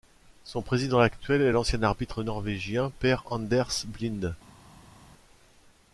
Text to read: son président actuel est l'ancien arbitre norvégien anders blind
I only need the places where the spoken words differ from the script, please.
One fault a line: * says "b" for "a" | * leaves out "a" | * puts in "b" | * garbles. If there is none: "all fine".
* puts in "per"